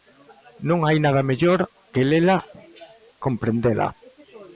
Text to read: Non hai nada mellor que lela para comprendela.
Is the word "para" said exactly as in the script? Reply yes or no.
no